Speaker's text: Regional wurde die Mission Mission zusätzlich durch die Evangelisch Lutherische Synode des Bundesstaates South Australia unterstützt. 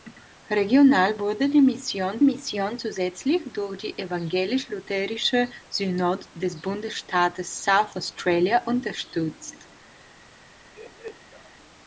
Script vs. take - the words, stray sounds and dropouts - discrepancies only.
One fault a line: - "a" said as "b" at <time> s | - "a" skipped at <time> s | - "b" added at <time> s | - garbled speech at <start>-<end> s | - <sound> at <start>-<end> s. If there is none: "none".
- laugh at 10.7-11.5 s